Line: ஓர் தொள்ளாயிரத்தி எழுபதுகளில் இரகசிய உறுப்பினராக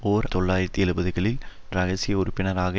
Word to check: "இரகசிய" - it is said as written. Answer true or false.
true